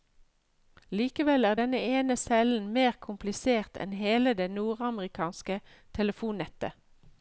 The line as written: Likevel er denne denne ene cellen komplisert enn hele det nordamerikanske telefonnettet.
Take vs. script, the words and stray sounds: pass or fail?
fail